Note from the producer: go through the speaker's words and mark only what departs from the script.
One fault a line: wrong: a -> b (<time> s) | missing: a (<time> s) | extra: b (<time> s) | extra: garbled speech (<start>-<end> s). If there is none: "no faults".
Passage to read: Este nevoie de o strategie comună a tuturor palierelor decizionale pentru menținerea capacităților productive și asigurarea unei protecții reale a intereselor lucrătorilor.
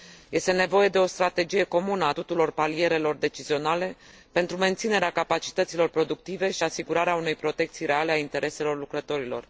no faults